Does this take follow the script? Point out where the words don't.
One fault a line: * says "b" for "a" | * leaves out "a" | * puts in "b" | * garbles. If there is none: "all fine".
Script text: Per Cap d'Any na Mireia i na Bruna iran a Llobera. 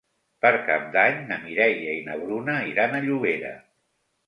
all fine